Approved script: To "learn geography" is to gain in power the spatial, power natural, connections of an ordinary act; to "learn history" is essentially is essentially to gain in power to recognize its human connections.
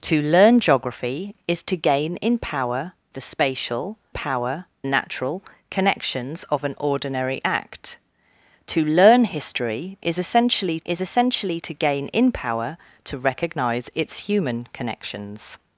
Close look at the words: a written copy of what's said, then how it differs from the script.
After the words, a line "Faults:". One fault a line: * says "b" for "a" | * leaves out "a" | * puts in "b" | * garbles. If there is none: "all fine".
To "learn geography" is to gain in power the spatial, power natural, connections of an ordinary act; to "learn history" is essentially is essentially to gain in power to recognize its human connections.
Faults:
all fine